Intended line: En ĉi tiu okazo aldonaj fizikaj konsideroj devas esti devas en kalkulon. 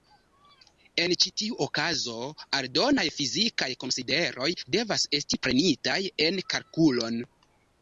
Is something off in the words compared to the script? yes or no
yes